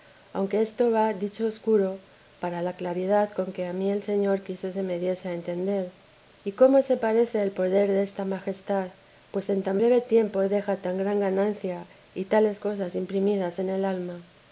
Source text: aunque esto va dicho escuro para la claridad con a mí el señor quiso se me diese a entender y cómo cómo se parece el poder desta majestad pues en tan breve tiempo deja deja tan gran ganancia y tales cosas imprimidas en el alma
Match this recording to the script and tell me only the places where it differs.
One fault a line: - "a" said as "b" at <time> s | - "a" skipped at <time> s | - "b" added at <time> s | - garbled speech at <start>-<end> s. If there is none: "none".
- "que" added at 3.5 s
- "cómo" skipped at 6.8 s
- "deja" skipped at 10.8 s